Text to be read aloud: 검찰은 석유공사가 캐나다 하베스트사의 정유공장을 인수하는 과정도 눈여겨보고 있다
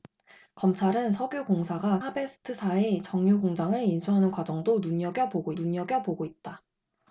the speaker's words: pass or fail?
fail